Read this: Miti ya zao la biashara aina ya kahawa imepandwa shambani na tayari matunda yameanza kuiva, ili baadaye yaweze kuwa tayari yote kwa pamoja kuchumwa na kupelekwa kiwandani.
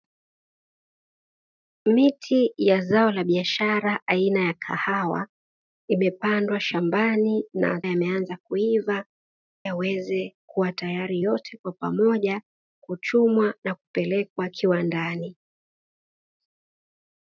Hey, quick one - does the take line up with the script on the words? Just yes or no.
no